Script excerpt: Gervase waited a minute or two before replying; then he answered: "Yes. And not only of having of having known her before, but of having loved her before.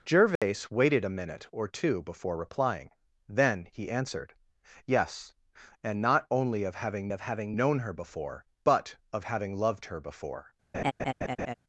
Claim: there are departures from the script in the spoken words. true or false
false